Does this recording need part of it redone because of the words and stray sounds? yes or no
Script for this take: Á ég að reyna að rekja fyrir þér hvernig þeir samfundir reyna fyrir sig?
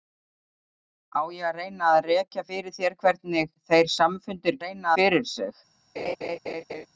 yes